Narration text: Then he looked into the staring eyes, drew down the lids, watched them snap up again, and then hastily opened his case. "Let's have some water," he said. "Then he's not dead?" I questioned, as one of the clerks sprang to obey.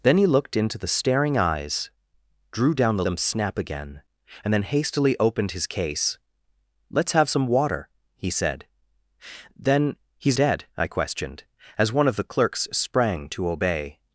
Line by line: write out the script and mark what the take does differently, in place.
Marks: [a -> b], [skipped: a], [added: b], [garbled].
Then he looked into the staring eyes, drew down the [skipped: lids, watched] them snap [skipped: up] again, and then hastily opened his case. "Let's have some water," he said. "Then he's [skipped: not] dead?" I questioned, as one of the clerks sprang to obey.